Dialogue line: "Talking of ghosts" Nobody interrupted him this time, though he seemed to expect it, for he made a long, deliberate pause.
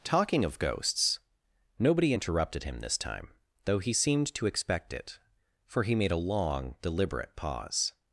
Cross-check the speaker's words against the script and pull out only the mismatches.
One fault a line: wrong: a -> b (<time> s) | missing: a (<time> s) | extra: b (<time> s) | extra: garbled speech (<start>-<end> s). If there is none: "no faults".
no faults